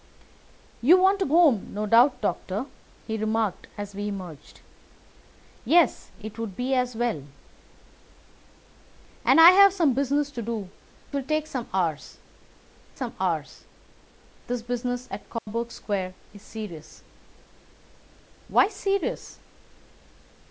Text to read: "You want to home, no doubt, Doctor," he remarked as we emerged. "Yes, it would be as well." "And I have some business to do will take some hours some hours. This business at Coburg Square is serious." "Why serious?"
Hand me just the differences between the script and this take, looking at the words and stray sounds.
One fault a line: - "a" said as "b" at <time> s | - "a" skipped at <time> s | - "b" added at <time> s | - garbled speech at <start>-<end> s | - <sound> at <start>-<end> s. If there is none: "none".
- dropout at 15.4-15.5 s